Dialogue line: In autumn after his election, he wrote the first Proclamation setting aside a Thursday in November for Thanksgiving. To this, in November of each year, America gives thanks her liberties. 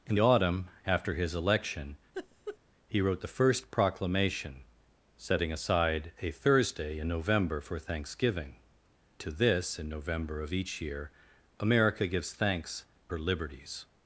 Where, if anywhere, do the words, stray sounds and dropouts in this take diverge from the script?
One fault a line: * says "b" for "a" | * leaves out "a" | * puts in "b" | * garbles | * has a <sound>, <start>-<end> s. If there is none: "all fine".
* has a laugh, 2.1-2.6 s